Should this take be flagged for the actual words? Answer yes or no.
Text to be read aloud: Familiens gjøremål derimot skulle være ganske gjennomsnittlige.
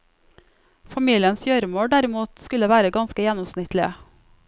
no